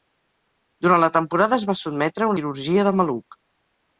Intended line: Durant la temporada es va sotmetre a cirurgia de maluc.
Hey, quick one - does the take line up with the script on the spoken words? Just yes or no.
yes